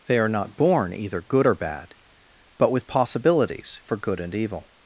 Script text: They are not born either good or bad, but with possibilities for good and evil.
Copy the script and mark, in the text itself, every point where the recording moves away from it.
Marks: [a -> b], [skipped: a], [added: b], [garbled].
They are not born either good or bad, but with possibilities for good and evil.